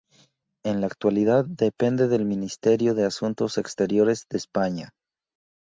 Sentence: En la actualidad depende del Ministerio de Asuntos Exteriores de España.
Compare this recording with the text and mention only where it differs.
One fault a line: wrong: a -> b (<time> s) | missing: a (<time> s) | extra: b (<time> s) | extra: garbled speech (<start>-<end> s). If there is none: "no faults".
no faults